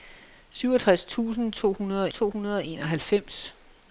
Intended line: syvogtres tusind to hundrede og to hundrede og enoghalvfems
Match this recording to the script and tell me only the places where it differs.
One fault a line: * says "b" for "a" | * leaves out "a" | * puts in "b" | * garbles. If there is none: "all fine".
all fine